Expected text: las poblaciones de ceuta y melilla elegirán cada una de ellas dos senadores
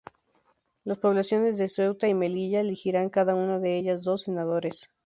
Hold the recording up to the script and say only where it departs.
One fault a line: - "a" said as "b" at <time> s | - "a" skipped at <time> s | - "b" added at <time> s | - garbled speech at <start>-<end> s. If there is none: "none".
none